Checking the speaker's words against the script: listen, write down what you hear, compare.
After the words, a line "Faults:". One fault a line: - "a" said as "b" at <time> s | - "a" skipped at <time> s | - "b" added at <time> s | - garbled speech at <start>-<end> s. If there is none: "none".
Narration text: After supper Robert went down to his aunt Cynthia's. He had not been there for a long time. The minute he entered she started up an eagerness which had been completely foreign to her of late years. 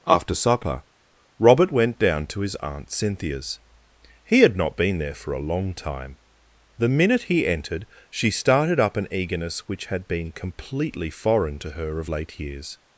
After supper Robert went down to his aunt Cynthia's. He had not been there for a long time. The minute he entered she started up an eagerness which had been completely foreign to her of late years.
Faults:
none